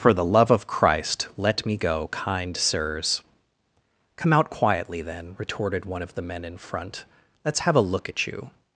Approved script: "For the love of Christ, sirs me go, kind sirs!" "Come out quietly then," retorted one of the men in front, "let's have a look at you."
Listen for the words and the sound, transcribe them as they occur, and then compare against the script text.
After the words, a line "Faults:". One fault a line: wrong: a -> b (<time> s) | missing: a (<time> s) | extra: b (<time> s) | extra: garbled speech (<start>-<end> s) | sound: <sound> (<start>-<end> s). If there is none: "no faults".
"For the love of Christ, let me go, kind sirs!" "Come out quietly then," retorted one of the men in front, "let's have a look at you."
Faults:
wrong: sirs -> let (1.4 s)